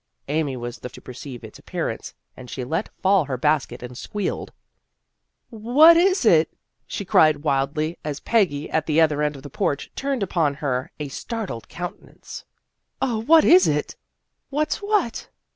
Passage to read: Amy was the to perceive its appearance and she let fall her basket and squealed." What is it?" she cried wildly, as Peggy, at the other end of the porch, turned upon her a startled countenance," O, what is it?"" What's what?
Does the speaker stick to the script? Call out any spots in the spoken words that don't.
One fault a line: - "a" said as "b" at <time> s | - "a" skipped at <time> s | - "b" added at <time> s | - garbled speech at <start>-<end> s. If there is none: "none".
none